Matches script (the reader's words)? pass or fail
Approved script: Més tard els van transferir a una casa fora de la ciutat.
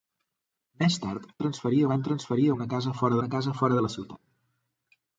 fail